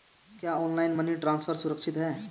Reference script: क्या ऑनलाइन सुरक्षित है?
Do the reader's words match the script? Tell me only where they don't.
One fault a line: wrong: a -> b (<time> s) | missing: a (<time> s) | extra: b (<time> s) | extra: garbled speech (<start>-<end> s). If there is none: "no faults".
extra: मनी ट्रांसफर (0.9 s)